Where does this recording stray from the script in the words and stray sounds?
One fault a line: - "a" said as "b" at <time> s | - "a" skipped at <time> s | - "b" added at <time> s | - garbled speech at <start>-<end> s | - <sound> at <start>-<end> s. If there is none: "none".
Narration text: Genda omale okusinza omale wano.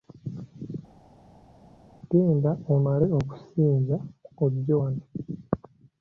- "omale" said as "ojje" at 4.4 s